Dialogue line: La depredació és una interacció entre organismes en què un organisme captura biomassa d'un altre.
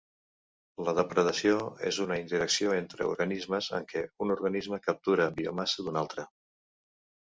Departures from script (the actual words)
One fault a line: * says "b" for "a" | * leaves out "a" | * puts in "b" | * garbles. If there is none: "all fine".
all fine